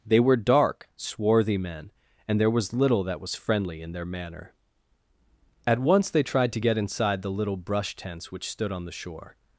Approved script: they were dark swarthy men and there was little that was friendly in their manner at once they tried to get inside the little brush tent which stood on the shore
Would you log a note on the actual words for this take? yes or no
yes